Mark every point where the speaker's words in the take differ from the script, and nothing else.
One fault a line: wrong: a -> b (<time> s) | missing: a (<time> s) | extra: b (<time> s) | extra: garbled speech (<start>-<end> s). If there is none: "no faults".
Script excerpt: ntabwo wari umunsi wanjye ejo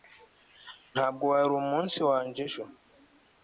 no faults